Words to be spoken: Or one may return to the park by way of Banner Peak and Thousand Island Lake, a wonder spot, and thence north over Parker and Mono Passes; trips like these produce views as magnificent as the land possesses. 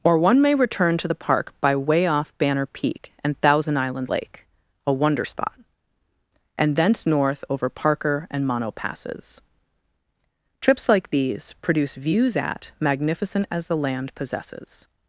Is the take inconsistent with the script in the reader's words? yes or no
yes